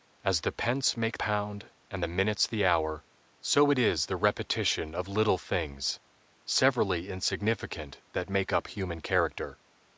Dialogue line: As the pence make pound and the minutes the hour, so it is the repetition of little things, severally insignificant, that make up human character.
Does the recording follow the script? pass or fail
pass